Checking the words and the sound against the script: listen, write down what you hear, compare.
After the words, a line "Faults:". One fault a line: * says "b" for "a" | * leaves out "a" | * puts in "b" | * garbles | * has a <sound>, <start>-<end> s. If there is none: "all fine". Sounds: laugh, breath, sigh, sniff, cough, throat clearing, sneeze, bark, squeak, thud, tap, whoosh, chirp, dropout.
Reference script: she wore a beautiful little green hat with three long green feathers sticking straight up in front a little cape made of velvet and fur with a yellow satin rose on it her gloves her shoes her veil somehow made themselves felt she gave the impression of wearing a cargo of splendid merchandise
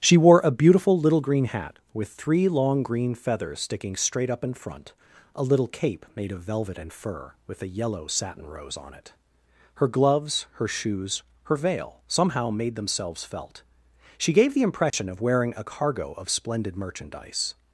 she wore a beautiful little green hat with three long green feathers sticking straight up in front a little cape made of velvet and fur with a yellow satin rose on it her gloves her shoes her veil somehow made themselves felt she gave the impression of wearing a cargo of splendid merchandise
Faults:
* has a dropout, 14.9-14.9 s